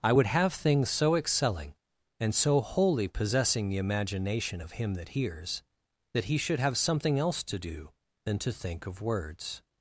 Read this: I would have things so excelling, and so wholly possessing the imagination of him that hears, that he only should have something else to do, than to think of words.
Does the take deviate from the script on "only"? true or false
true